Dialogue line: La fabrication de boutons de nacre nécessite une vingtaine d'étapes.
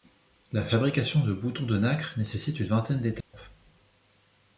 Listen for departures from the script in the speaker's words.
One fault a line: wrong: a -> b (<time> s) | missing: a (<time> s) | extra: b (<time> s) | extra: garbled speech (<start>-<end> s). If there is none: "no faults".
no faults